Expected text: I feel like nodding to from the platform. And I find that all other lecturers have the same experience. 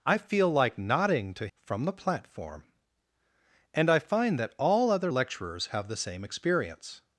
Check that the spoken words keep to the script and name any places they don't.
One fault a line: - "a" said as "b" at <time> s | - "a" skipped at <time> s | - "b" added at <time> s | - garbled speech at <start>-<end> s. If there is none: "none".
none